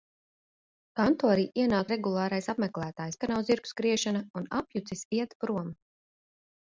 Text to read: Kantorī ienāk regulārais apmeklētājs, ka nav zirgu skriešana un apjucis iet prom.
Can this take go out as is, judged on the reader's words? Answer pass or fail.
pass